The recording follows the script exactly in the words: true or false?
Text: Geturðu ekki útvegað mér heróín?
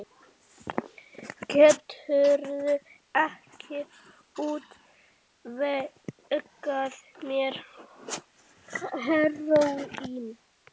true